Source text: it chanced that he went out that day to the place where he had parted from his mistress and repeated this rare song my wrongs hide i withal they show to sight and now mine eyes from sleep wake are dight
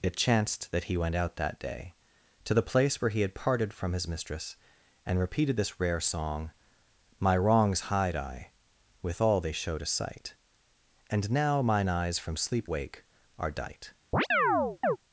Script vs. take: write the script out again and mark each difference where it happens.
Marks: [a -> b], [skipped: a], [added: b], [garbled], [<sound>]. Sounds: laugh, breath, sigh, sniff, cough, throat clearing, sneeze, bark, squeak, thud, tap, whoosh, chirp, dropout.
it chanced that he went out that day to the place where he had parted from his mistress and repeated this rare song my wrongs hide i withal they show to sight and now mine eyes from sleep wake are dight [chirp]